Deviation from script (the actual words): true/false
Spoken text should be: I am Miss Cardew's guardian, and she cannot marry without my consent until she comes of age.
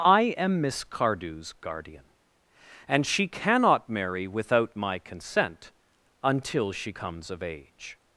false